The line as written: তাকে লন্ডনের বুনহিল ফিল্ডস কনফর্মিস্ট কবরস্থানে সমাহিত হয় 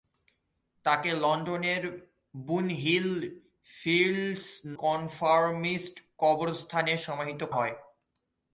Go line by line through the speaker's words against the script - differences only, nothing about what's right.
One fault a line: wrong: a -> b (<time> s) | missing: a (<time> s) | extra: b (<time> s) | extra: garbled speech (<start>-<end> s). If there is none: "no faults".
no faults